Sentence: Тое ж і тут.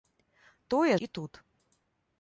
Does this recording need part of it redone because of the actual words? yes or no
yes